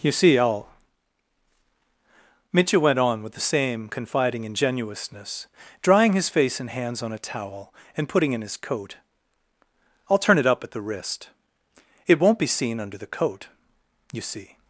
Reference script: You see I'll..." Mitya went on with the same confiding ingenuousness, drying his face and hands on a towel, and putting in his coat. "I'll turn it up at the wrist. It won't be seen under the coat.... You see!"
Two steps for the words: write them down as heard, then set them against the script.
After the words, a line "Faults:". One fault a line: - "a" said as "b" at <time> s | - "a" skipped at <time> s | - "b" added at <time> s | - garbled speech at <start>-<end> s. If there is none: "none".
You see I'll..." Mitya went on with the same confiding ingenuousness, drying his face and hands on a towel, and putting in his coat. "I'll turn it up at the wrist. It won't be seen under the coat.... You see!"
Faults:
none